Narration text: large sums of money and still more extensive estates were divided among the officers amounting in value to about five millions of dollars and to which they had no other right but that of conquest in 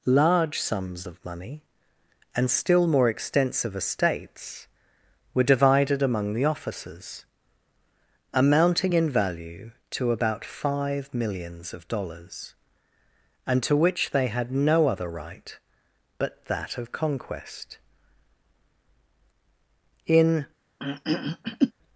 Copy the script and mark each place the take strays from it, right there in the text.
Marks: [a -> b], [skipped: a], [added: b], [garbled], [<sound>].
large sums of money and still more extensive estates were divided among the officers amounting in value to about five millions of dollars and to which they had no other right but that of conquest in [throat clearing]